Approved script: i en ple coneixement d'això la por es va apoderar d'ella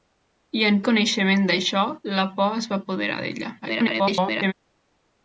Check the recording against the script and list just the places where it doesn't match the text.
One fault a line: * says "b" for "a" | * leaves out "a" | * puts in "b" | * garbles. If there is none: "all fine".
* leaves out "ple"
* garbles